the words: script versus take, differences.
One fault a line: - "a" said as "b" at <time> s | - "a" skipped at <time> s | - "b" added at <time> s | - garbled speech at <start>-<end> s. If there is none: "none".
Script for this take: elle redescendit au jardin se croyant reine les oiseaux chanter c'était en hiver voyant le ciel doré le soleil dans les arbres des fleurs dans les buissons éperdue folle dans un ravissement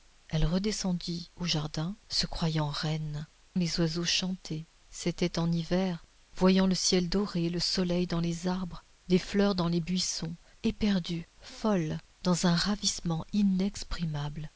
none